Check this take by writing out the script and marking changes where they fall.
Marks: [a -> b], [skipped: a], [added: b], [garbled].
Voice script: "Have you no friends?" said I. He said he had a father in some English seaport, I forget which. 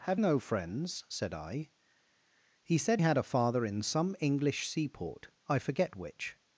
"Have [skipped: you] no friends?" said I. He said [skipped: he] had a father in some English seaport, I forget which.